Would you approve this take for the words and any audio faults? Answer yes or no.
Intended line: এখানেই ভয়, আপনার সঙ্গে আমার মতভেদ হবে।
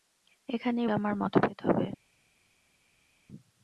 no